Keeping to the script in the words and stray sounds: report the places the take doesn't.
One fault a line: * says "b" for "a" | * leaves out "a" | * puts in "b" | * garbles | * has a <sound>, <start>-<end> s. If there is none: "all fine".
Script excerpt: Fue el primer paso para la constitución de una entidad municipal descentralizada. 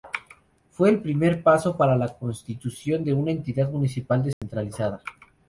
* has a dropout, 4.3-4.4 s